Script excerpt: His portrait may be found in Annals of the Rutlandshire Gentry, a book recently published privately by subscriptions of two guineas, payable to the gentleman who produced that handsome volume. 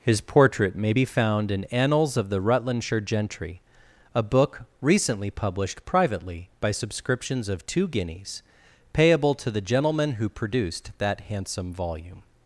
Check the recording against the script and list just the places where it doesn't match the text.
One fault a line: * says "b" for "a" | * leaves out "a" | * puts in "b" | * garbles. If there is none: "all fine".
all fine